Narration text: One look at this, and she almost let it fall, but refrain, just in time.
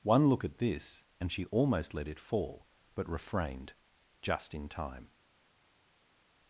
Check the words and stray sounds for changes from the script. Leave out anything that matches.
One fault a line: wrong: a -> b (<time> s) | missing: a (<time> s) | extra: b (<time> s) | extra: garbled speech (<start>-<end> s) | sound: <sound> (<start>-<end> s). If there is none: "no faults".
wrong: refrain -> refrained (3.1 s)